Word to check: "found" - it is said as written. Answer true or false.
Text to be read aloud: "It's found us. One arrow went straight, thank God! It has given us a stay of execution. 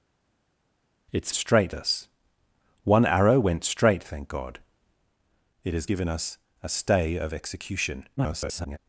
false